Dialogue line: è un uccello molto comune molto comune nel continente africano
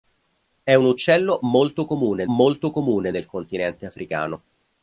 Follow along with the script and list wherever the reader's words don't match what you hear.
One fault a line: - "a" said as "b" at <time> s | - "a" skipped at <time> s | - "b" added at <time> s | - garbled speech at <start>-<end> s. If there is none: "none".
none